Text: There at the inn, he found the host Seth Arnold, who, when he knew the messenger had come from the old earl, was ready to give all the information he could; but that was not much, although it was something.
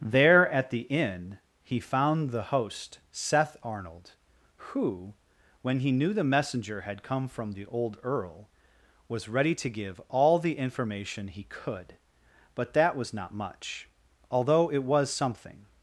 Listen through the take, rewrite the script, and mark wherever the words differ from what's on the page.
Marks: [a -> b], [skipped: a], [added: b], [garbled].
There at the inn, he found the host Seth Arnold, who, when he knew the messenger had come from the old earl, was ready to give all the information he could; but that was not much, although it was something.